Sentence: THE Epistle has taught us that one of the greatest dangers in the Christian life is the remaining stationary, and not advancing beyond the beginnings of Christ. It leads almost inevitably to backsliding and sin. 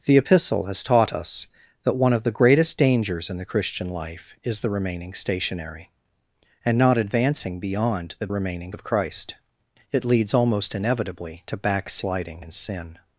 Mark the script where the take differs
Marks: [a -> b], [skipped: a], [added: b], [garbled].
THE Epistle has taught us that one of the greatest dangers in the Christian life is the remaining stationary, and not advancing beyond the [beginnings -> remaining] of Christ. It leads almost inevitably to backsliding and sin.